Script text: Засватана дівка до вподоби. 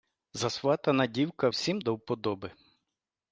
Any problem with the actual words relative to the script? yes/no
yes